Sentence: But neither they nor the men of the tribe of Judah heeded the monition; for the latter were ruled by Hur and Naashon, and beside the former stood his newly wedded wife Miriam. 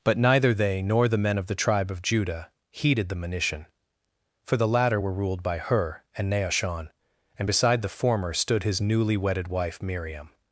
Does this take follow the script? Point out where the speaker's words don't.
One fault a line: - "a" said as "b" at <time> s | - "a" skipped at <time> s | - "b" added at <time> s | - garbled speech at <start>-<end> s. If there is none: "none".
none